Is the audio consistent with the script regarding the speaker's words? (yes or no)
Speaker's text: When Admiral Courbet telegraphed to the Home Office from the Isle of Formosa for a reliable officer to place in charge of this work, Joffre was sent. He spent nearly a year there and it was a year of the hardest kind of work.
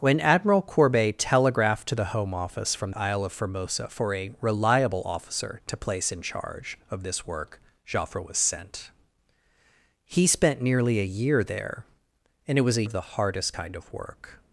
no